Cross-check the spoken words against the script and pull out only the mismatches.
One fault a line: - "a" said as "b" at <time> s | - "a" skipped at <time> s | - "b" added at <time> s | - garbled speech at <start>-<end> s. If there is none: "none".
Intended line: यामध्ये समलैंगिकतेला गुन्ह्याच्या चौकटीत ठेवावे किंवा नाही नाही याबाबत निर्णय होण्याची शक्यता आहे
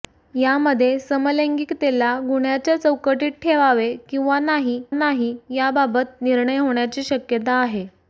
none